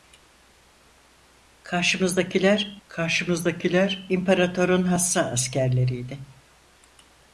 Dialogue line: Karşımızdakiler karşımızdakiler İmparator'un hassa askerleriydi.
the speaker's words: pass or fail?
pass